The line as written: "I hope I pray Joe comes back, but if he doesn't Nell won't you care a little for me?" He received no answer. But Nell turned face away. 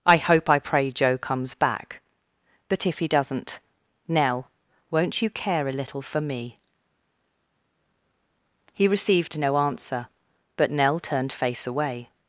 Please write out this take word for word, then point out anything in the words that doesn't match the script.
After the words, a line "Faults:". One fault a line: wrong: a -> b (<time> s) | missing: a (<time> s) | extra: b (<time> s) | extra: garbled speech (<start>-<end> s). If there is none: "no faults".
"I hope I pray Joe comes back, but if he doesn't Nell won't you care a little for me?" He received no answer. But Nell turned face away.
Faults:
no faults